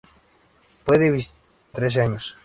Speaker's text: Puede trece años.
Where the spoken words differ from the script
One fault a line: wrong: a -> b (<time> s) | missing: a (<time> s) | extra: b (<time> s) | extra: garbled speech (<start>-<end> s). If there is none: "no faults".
no faults